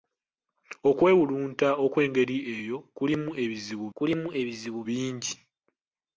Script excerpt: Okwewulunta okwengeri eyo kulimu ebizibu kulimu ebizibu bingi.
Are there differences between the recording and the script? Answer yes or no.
no